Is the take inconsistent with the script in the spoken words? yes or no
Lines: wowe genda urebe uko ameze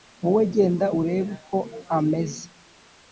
no